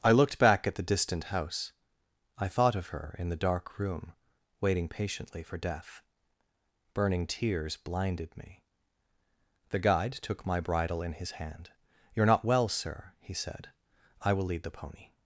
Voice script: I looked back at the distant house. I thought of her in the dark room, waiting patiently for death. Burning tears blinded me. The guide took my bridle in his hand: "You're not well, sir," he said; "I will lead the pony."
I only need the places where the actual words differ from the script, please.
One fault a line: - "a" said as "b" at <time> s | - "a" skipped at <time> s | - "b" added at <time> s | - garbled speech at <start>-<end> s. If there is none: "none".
none